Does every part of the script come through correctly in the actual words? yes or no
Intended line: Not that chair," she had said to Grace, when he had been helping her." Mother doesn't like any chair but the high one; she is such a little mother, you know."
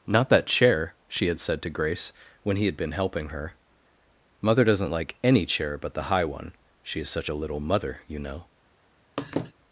yes